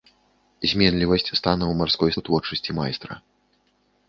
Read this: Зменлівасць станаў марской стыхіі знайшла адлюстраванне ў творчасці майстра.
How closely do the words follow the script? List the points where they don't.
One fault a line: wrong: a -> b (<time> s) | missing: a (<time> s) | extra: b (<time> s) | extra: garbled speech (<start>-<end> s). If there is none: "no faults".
missing: стыхіі знайшла адлюстраванне (2.1 s)